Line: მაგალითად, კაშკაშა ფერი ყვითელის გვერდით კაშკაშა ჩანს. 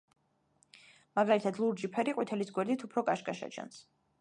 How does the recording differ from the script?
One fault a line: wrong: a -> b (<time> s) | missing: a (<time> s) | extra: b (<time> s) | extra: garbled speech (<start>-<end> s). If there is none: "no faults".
wrong: კაშკაშა -> ლურჯი (1.6 s)
extra: უფრო (2.9 s)